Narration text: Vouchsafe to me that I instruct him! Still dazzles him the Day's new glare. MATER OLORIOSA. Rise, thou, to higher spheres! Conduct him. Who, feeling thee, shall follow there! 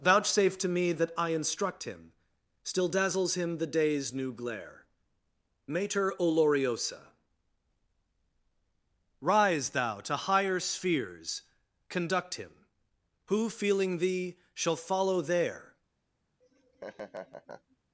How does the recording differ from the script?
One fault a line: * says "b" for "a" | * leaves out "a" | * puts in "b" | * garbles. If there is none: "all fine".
all fine